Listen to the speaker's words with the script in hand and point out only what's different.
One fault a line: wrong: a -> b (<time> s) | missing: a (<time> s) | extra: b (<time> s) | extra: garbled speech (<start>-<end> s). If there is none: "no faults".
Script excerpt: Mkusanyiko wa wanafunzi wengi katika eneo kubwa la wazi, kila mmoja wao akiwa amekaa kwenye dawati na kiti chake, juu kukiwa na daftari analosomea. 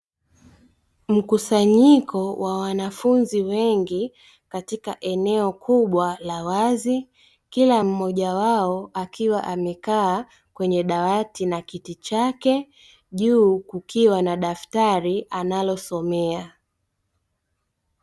no faults